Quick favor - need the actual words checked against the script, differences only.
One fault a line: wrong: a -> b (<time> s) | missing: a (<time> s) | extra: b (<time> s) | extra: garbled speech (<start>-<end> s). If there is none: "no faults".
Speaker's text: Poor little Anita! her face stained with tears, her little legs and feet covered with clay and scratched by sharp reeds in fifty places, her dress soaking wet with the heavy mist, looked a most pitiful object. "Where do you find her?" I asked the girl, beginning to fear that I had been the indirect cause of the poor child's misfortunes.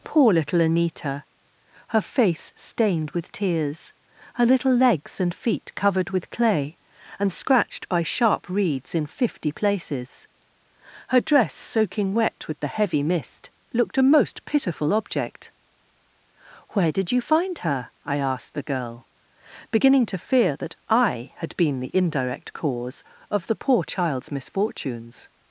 wrong: do -> did (16.9 s)